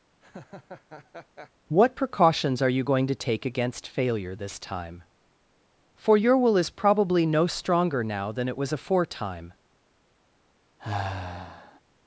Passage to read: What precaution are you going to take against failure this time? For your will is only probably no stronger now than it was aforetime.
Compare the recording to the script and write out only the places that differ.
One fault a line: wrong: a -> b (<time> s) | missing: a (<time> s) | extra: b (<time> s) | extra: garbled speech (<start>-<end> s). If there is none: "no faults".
wrong: precaution -> precautions (1.9 s)
missing: only (6.7 s)